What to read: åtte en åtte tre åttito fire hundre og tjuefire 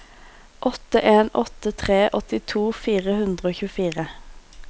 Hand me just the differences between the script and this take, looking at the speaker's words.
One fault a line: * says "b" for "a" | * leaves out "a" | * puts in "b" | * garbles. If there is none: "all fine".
all fine